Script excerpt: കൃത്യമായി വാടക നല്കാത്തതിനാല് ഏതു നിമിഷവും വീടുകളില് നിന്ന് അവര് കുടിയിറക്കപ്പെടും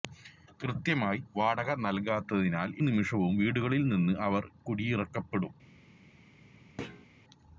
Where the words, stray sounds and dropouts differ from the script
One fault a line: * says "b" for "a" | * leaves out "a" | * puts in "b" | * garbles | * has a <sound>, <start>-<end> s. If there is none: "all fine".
* leaves out "ഏതു"
* has a thud, 6.8-7.1 s